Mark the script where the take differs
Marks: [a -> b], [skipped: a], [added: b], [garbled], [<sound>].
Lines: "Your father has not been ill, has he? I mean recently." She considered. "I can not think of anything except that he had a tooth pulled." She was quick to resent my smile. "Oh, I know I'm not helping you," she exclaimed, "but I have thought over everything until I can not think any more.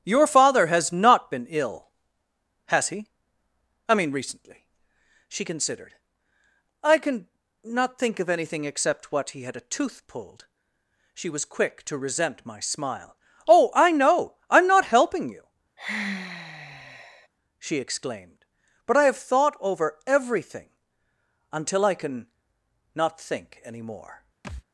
"Your father has not been ill, has he? I mean recently." She considered. "I can not think of anything except [that -> what] he had a tooth pulled." She was quick to resent my smile. "Oh, I know I'm not helping you," [sigh] she exclaimed, "but I have thought over everything until I can not think any more. [thud]